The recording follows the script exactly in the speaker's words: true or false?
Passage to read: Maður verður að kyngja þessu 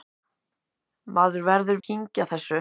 true